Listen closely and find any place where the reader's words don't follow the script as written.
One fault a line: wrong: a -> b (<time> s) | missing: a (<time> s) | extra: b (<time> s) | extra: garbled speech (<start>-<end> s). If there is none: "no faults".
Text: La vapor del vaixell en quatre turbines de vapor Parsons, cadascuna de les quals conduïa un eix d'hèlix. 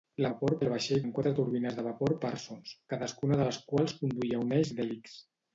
no faults